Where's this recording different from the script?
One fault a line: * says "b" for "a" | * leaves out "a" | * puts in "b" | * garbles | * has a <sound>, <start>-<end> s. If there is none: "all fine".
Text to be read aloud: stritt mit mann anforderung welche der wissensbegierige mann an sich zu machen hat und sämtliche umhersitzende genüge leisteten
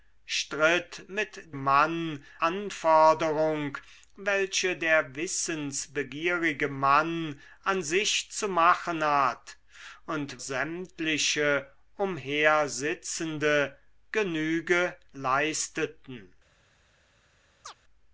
* has a chirp, 17.6-17.8 s